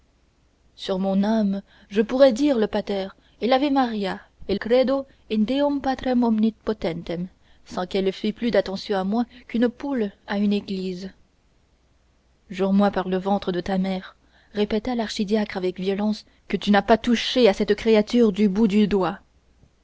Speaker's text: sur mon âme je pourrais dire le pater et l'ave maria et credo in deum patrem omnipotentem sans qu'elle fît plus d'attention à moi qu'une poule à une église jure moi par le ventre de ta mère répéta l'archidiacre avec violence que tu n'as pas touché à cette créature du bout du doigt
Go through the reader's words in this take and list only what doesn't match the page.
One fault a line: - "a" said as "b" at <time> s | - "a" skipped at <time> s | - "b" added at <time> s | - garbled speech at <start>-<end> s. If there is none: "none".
none